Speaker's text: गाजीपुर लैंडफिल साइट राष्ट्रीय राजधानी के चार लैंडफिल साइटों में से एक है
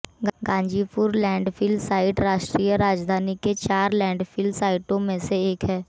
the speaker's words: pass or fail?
pass